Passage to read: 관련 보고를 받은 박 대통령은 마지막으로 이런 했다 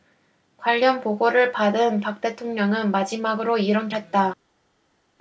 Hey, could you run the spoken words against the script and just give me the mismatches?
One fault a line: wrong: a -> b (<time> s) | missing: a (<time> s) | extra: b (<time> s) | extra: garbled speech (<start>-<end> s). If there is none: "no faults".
no faults